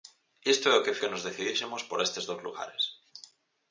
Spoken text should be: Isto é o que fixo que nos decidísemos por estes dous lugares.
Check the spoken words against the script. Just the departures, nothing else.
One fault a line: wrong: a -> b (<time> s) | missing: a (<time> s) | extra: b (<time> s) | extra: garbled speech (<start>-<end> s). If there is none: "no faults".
missing: fixo (1.0 s)